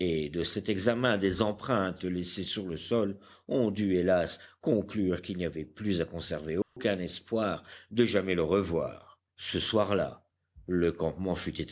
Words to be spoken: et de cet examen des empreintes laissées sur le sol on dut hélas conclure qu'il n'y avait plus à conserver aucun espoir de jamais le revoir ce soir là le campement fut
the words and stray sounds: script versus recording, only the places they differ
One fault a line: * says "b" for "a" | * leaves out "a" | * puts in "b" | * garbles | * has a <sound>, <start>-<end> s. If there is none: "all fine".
* has a dropout, 6.6-6.8 s